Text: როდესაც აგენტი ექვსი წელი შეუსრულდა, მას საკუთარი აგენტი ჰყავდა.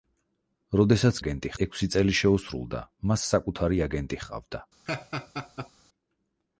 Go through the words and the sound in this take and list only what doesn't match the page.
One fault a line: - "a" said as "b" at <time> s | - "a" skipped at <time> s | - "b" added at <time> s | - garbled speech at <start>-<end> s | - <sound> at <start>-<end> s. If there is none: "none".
- laugh at 4.9-5.7 s